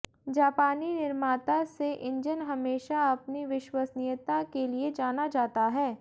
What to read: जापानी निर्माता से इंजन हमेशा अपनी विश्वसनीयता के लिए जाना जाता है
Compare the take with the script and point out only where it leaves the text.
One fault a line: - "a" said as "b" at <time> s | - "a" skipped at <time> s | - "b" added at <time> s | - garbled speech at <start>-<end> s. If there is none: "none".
none